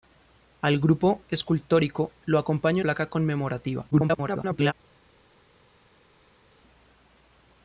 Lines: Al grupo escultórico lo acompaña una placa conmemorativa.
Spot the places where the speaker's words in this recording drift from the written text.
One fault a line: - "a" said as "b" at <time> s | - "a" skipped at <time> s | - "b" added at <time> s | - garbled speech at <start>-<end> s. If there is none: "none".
- "una" skipped at 2.8 s
- garbled speech at 3.9-4.7 s